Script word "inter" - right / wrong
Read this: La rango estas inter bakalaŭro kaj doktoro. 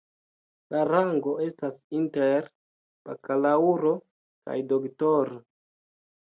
right